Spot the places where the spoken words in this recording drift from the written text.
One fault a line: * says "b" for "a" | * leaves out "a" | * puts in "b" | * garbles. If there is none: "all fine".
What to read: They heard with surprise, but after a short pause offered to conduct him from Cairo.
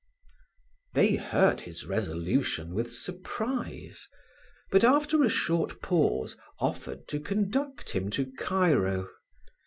* puts in "his resolution"
* says "to" for "from"